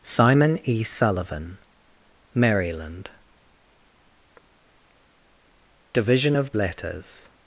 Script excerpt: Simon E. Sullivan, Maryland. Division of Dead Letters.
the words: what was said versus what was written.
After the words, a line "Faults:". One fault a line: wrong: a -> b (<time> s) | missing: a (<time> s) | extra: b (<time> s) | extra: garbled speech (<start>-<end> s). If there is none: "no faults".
Simon E. Sullivan, Maryland. Division of Letters.
Faults:
missing: Dead (6.5 s)